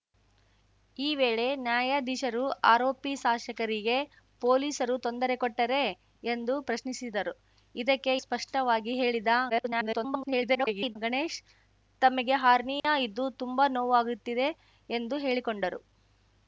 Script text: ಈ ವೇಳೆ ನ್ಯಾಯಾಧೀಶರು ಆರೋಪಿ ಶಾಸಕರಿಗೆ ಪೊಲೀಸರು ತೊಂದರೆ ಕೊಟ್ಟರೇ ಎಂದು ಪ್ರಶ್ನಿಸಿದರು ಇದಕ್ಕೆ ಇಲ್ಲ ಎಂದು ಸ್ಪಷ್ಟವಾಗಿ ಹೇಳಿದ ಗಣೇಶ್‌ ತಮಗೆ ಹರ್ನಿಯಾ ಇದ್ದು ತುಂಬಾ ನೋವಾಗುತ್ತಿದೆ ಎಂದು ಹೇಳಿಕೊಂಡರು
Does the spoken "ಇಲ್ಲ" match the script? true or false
false